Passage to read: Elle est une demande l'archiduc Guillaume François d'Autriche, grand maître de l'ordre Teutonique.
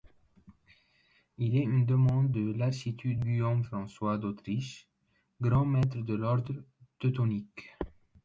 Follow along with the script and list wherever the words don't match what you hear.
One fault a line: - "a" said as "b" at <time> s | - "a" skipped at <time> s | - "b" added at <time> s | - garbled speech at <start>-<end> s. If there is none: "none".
- "Elle" said as "Il" at 1.4 s
- "de" added at 2.3 s